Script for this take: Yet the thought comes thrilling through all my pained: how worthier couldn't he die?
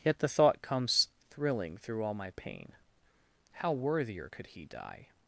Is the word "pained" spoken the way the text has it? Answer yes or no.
no